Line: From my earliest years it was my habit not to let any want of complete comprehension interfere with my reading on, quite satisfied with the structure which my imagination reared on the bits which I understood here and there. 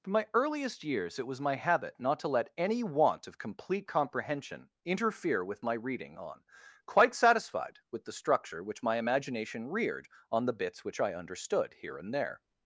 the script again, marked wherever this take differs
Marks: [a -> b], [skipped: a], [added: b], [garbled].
From my earliest years it was my habit not to let any want of complete comprehension interfere with my reading on, quite satisfied with the structure which my imagination reared on the bits which I understood here and there.